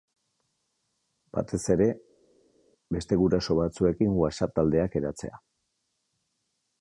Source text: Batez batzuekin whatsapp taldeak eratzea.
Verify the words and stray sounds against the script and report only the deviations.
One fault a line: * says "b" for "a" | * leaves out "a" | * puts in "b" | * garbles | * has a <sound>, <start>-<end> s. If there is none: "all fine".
* puts in "ere beste guraso"